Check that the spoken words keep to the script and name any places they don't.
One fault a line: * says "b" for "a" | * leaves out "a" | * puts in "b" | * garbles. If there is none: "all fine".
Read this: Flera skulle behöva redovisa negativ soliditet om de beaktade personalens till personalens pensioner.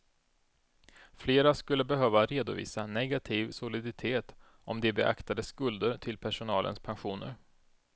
* says "skulder" for "personalens"